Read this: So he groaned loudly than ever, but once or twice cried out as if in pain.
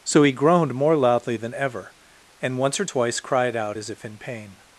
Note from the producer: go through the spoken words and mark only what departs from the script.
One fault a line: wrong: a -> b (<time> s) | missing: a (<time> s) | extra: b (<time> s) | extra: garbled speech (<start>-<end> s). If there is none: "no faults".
extra: more (0.7 s)
wrong: but -> and (2.4 s)